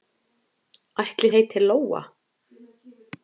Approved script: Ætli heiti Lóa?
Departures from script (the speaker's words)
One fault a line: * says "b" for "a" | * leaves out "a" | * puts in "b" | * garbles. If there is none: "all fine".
all fine